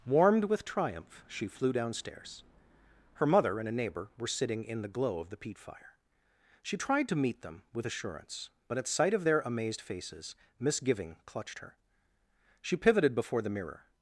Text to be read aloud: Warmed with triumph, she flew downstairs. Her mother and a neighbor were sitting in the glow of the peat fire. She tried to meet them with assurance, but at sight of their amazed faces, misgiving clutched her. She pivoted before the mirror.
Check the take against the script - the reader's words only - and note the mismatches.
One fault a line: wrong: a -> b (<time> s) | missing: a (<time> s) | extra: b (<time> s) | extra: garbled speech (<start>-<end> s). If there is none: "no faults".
no faults